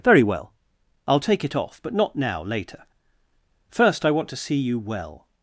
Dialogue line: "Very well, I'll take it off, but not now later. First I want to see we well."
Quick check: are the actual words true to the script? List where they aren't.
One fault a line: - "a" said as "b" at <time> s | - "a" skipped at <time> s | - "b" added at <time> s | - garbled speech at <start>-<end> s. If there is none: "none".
- "we" said as "you" at 4.5 s